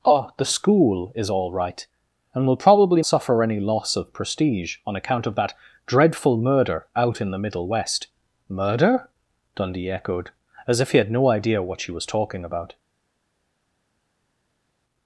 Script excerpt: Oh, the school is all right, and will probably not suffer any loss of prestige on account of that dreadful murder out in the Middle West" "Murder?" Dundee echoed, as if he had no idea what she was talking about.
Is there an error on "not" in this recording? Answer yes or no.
yes